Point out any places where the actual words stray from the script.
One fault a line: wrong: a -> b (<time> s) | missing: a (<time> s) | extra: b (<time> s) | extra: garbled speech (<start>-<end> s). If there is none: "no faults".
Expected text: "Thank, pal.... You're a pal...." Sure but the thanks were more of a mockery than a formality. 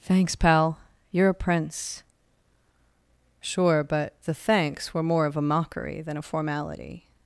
wrong: Thank -> Thanks (0.0 s)
wrong: pal -> prince (1.3 s)